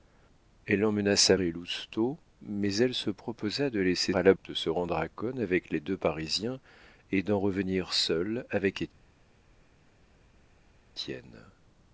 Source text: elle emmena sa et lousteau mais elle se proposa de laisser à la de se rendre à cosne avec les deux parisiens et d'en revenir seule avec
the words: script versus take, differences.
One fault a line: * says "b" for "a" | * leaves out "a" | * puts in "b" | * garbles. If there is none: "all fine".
all fine